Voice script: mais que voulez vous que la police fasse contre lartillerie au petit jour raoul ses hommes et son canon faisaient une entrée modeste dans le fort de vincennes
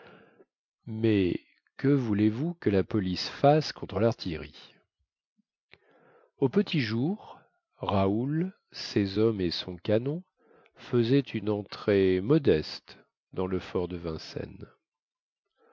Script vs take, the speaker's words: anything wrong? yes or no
no